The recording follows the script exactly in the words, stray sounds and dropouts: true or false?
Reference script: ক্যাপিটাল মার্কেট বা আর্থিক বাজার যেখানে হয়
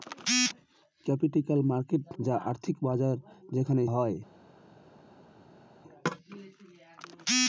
true